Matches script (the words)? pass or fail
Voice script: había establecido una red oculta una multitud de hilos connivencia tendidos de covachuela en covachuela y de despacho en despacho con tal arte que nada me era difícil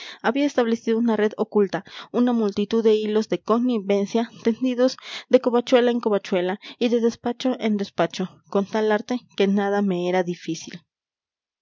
fail